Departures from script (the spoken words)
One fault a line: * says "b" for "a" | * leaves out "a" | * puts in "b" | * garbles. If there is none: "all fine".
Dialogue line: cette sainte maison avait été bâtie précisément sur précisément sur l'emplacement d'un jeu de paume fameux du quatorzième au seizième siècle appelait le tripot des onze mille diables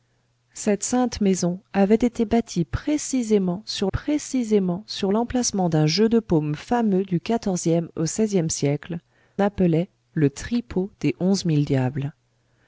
all fine